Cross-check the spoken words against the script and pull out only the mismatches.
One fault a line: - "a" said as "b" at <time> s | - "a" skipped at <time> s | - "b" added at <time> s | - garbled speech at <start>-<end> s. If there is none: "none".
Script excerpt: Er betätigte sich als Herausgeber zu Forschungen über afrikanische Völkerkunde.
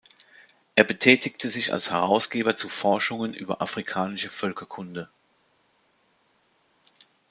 none